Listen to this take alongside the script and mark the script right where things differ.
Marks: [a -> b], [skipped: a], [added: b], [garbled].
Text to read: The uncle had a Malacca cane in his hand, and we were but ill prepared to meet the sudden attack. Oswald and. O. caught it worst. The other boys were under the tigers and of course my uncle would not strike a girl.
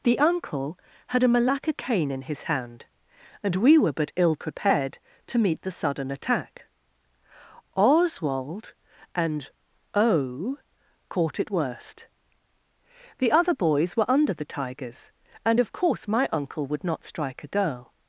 The uncle had a Malacca cane in his hand, and we were but ill prepared to meet the sudden attack. Oswald and. O. caught it worst. The other boys were under the tigers and of course my uncle would not strike a girl.